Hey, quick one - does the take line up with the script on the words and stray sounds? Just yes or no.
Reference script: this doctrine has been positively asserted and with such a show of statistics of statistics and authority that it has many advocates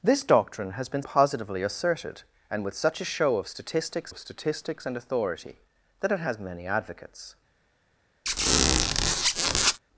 no